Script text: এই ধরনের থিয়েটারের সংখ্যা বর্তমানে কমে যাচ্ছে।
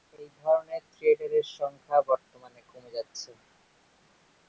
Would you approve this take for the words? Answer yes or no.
yes